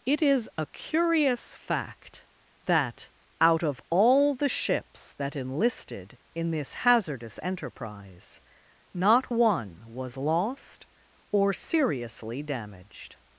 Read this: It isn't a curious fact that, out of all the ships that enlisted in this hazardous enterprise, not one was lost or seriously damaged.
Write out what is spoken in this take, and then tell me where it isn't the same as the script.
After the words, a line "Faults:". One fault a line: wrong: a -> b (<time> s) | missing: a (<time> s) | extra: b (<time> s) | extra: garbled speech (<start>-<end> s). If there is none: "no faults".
It is a curious fact that, out of all the ships that enlisted in this hazardous enterprise, not one was lost or seriously damaged.
Faults:
wrong: isn't -> is (0.2 s)